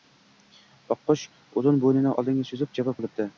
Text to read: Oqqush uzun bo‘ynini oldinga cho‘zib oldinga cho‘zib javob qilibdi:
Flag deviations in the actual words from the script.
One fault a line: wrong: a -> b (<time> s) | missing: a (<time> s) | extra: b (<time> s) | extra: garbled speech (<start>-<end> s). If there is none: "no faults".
missing: oldinga cho‘zib (2.8 s)